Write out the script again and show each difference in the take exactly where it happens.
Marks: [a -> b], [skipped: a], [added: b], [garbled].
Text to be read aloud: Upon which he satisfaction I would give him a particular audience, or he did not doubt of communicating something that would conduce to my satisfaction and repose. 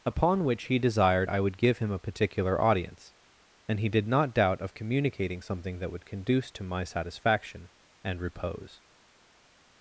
Upon which he [satisfaction -> desired] I would give him a particular audience, [or -> and] he did not doubt of communicating something that would conduce to my satisfaction and repose.